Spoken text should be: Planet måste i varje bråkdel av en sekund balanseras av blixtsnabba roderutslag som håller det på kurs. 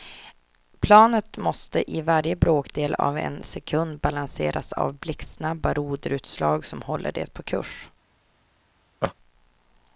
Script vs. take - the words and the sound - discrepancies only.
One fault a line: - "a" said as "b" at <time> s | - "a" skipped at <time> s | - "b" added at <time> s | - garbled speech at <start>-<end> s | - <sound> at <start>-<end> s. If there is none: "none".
- laugh at 9.0-9.1 s